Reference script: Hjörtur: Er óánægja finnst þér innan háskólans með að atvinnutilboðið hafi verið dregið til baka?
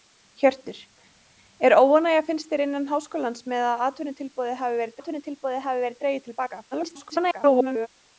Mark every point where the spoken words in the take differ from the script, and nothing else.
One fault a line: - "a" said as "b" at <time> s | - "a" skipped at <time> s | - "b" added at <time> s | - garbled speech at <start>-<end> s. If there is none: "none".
- "atvinnutilboðið hafi verið" added at 5.0 s
- garbled speech at 6.7-7.9 s